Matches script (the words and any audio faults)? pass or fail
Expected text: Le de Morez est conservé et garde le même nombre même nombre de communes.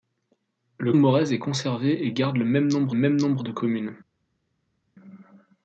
pass